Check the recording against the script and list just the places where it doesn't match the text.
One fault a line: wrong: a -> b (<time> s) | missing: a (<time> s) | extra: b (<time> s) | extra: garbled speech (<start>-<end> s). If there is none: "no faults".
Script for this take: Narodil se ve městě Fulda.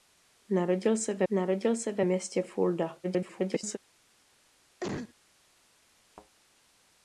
extra: narodil se ve (1.3 s)
extra: garbled speech (3.0-3.8 s)